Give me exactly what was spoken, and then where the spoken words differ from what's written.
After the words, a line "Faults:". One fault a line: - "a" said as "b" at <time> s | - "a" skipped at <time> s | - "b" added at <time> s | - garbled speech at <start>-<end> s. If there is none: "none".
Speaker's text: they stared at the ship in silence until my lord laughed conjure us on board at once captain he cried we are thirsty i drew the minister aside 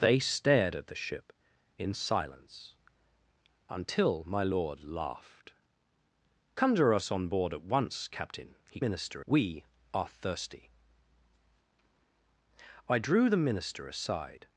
they stared at the ship in silence until my lord laughed conjure us on board at once captain he minister we are thirsty i drew the minister aside
Faults:
- "cried" said as "minister" at 8.8 s